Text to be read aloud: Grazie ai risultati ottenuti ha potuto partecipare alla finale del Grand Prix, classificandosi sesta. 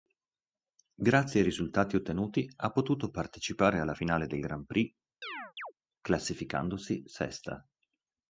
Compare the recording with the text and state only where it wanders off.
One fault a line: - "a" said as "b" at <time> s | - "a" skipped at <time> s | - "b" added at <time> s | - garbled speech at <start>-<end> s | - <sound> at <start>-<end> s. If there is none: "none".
- chirp at 5.2-5.7 s